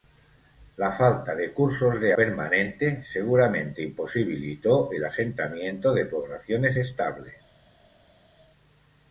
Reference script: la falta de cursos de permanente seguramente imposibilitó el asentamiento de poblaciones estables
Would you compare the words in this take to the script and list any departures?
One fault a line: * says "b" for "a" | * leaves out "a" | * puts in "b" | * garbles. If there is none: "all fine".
all fine